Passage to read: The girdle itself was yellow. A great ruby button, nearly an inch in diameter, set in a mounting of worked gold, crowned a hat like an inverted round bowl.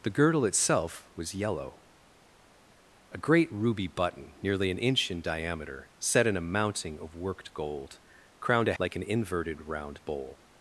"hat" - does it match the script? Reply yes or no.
no